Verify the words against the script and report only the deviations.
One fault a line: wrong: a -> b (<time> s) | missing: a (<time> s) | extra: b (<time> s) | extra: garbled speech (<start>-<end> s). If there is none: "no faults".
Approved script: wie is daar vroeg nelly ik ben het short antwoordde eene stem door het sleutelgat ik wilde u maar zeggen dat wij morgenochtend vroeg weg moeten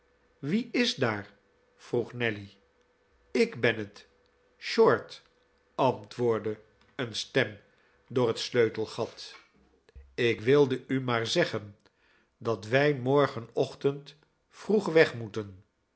no faults